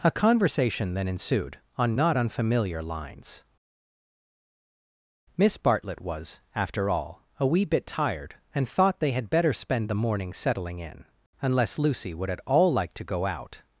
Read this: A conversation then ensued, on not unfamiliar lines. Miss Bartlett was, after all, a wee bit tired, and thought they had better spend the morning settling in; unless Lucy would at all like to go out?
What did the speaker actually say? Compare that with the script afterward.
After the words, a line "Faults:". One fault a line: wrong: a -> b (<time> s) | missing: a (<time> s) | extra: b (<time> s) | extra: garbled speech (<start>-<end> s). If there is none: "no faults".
A conversation then ensued, on not unfamiliar lines. Miss Bartlett was, after all, a wee bit tired, and thought they had better spend the morning settling in; unless Lucy would at all like to go out?
Faults:
no faults